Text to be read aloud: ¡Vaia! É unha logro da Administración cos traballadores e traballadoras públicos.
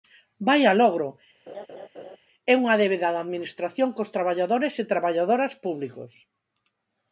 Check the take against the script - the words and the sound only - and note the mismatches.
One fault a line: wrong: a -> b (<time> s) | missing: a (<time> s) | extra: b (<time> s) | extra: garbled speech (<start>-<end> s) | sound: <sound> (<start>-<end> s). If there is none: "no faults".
extra: logro (0.8 s)
sound: laugh (1.5-2.2 s)
wrong: logro -> débeda (2.8 s)